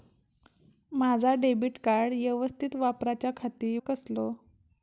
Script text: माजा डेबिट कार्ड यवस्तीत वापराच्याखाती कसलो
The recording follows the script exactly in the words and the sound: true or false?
true